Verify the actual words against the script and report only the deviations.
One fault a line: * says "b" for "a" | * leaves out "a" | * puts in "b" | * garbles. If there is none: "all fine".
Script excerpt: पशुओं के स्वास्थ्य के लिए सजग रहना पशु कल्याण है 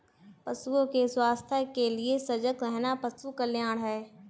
all fine